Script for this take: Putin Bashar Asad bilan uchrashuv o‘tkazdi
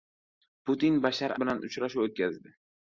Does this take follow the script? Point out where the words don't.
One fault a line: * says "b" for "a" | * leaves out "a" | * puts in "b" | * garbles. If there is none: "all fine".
* leaves out "Asad"